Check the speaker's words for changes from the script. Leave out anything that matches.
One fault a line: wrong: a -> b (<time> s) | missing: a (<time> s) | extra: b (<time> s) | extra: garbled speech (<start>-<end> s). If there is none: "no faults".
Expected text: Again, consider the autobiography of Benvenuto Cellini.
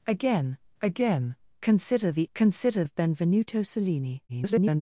extra: again (0.8 s)
wrong: autobiography -> consider (2.3 s)
extra: garbled speech (4.3-4.8 s)